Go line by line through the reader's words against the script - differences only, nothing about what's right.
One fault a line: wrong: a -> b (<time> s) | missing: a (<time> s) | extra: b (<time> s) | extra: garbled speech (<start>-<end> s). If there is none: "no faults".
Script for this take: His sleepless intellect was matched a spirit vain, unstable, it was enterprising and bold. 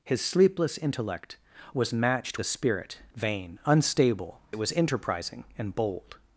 no faults